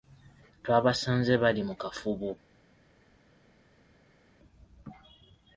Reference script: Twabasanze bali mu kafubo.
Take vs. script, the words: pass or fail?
pass